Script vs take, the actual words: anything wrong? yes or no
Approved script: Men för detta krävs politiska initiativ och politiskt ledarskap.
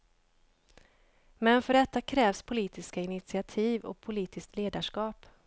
no